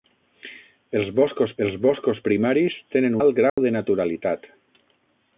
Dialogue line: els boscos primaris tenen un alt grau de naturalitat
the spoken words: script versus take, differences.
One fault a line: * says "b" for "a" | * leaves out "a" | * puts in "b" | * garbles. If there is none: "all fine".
* puts in "els boscos"
* leaves out "un"